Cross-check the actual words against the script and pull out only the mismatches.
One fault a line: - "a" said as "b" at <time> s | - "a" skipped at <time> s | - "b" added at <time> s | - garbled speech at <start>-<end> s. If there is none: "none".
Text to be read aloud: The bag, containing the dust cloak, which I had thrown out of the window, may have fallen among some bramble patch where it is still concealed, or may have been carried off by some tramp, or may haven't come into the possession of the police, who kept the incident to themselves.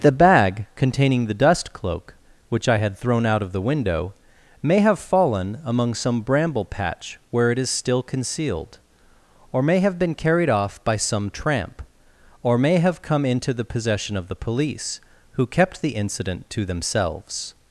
- "haven't" said as "have" at 12.8 s